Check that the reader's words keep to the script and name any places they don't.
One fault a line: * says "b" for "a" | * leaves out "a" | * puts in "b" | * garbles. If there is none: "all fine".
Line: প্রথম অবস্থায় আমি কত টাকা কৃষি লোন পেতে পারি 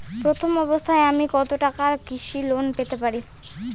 all fine